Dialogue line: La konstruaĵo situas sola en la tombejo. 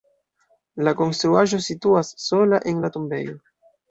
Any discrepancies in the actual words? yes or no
no